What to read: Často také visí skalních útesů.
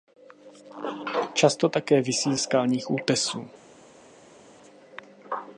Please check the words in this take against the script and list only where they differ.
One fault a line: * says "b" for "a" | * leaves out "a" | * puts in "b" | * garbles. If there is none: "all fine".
all fine